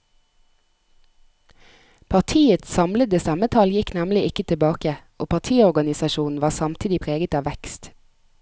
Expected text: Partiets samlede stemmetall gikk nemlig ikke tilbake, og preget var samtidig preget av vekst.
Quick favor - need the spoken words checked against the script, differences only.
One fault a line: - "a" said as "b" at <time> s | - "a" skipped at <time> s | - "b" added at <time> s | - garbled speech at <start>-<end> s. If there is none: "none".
- "preget" said as "partiorganisasjonen" at 5.3 s